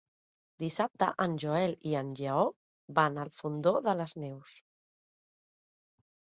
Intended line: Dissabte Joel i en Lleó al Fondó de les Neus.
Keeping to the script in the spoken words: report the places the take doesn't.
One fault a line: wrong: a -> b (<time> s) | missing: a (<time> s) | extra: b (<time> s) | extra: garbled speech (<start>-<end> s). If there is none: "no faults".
extra: en (1.2 s)
extra: van (3.0 s)